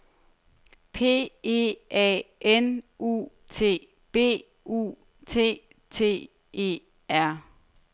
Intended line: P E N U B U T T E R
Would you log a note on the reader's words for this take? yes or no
yes